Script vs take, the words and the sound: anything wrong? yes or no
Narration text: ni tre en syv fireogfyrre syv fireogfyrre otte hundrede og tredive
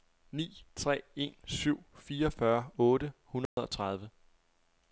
yes